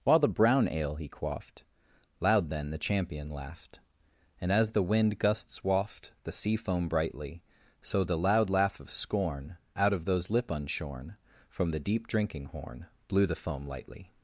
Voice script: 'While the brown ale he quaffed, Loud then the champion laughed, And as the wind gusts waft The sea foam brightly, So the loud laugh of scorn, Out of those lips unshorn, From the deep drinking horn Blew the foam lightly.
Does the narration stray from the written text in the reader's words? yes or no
yes